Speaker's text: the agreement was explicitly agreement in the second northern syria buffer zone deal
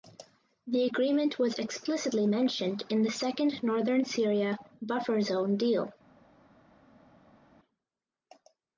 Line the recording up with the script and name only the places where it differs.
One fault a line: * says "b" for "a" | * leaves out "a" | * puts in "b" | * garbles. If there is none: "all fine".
* says "mentioned" for "agreement"